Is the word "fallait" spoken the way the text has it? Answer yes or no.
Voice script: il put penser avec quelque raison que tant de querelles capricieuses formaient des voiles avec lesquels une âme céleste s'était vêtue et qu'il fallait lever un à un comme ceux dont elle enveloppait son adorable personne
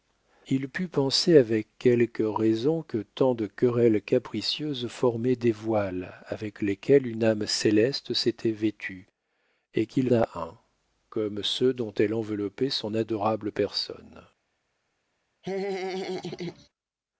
no